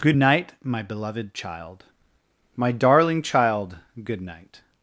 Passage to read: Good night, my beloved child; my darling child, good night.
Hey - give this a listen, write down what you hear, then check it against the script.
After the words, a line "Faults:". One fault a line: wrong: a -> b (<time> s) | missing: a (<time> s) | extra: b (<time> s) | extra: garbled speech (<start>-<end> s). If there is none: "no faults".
Good night, my beloved child; my darling child, good night.
Faults:
no faults